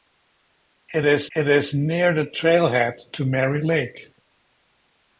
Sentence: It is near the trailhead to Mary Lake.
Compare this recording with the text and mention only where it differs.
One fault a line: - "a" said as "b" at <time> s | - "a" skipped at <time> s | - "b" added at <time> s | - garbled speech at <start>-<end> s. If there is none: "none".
- "it is" added at 1.4 s